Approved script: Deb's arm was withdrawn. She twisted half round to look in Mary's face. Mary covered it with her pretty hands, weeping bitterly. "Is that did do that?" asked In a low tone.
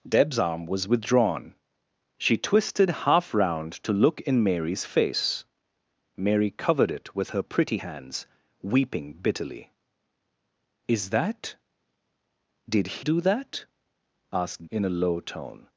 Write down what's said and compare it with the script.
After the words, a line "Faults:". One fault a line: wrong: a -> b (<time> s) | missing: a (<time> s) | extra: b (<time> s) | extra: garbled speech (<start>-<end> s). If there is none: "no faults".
Deb's arm was withdrawn. She twisted half round to look in Mary's face. Mary covered it with her pretty hands, weeping bitterly. "Is that did do that?" asked In a low tone.
Faults:
no faults